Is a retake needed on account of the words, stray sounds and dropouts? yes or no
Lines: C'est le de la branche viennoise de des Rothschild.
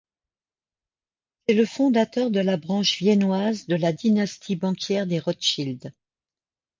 yes